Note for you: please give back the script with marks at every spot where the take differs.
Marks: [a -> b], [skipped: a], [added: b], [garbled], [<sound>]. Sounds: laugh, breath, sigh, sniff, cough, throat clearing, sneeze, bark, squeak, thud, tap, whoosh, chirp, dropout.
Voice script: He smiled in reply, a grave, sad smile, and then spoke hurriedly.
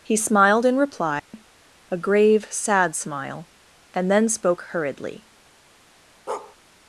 He smiled in reply, [dropout] a grave, sad smile, and then spoke hurriedly. [bark]